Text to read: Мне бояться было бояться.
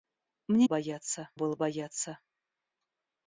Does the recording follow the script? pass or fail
pass